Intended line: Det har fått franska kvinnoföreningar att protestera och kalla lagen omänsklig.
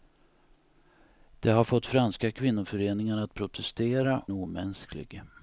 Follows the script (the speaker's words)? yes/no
no